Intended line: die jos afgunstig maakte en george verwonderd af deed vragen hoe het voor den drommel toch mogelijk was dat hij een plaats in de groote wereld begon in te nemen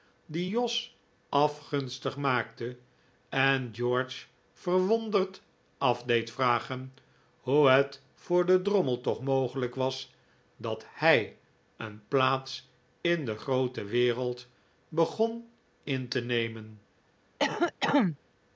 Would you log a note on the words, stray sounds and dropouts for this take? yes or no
yes